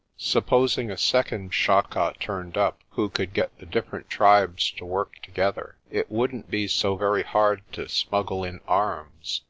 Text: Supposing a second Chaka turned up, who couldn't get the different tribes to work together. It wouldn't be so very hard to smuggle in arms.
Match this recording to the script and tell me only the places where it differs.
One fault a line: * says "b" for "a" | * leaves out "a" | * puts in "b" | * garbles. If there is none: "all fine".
* says "could" for "couldn't"